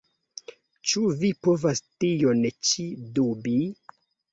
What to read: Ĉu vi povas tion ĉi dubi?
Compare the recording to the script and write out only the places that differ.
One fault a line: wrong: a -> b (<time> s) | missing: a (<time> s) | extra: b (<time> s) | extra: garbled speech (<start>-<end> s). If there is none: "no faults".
no faults